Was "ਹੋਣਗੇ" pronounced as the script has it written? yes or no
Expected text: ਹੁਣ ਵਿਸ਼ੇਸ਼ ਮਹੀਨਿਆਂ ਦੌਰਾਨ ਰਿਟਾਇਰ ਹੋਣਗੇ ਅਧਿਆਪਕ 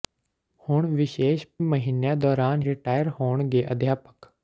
yes